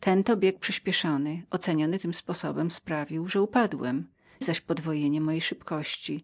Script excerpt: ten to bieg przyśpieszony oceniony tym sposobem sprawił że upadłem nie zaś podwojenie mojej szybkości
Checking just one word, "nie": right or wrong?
wrong